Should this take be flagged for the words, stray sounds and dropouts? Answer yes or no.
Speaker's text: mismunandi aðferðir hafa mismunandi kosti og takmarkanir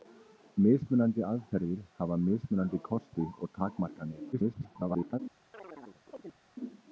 yes